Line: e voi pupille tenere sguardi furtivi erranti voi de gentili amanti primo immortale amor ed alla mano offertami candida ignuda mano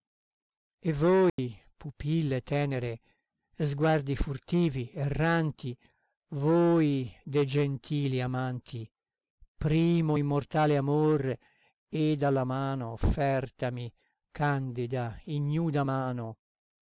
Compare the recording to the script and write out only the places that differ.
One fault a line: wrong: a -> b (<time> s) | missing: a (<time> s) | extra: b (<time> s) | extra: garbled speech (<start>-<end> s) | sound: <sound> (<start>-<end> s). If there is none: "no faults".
sound: dropout (1.3-1.4 s)